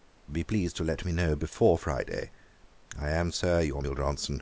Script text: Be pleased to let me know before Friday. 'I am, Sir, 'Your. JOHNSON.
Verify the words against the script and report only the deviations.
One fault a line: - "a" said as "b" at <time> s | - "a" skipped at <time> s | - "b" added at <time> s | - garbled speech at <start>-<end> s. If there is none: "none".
none